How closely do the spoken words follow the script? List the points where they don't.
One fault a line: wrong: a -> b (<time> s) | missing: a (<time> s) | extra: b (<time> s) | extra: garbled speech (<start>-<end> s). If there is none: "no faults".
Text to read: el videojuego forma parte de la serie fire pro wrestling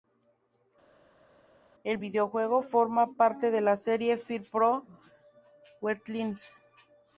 no faults